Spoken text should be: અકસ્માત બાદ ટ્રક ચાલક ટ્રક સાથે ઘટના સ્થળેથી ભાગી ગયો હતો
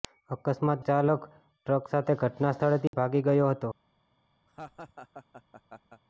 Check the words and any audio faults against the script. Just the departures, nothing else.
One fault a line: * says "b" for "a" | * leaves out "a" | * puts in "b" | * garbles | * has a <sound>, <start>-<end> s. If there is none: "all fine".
* leaves out "બાદ ટ્રક"
* has a dropout, 2.9-2.9 s
* has a laugh, 4.5-6.0 s